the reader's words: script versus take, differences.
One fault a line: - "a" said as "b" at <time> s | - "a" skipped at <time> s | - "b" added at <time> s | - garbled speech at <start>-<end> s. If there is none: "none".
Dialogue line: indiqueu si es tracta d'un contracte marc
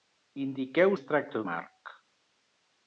- "si" skipped at 0.9 s
- "d'un contracte" skipped at 1.4 s